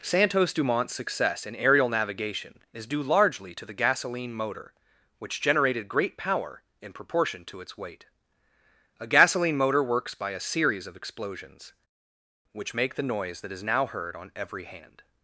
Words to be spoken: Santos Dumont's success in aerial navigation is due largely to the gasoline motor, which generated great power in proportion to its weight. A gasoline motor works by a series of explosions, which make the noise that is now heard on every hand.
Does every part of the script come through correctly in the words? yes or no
yes